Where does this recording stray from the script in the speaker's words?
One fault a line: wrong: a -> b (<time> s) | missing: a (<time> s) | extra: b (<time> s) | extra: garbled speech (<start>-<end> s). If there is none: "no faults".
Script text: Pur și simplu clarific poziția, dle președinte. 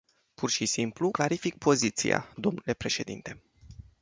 no faults